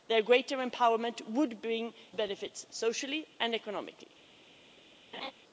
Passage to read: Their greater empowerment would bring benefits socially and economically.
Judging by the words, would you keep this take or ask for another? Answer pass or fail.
pass